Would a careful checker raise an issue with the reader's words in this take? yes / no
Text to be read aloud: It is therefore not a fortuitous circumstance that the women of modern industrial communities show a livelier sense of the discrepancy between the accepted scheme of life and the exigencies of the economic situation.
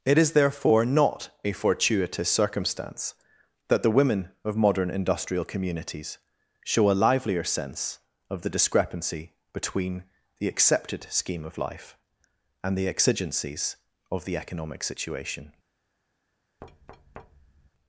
no